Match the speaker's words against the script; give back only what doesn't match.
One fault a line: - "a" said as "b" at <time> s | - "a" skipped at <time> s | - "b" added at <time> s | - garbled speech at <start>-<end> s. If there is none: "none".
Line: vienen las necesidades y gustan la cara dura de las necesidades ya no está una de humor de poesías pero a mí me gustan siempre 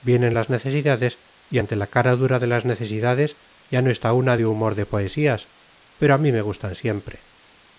- "gustan" said as "ante" at 1.6 s